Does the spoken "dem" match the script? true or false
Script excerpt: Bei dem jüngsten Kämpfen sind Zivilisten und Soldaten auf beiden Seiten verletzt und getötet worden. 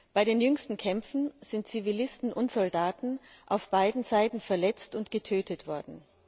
false